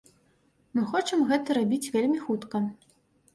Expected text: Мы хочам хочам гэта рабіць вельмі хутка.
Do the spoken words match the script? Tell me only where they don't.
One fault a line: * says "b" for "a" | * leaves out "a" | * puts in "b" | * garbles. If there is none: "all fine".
* leaves out "хочам"